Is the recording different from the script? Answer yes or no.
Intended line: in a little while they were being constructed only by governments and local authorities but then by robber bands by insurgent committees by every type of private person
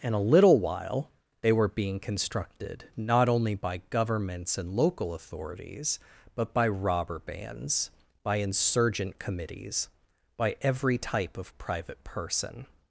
yes